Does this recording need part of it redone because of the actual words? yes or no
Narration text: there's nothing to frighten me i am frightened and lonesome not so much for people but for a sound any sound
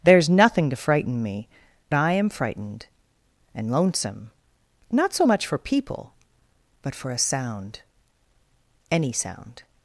no